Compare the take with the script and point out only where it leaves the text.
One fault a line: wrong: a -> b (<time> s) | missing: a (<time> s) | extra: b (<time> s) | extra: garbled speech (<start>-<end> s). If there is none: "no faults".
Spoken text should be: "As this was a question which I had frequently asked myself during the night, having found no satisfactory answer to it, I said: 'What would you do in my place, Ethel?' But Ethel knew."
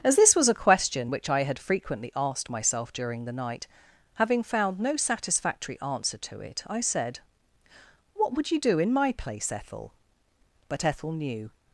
no faults